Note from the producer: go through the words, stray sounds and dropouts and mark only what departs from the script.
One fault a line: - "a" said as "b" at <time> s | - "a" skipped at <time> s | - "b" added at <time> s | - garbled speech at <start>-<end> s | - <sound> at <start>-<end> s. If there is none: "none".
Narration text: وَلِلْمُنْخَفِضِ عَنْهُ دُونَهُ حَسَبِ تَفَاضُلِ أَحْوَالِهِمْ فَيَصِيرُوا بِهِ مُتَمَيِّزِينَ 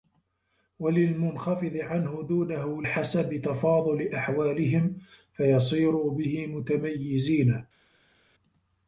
none